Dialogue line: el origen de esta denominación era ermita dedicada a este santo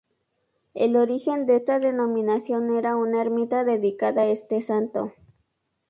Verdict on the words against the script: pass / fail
fail